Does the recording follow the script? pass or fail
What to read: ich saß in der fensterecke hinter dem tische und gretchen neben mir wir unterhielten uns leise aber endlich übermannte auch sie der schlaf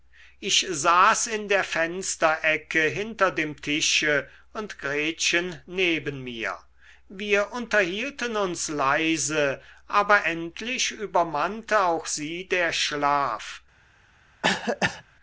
pass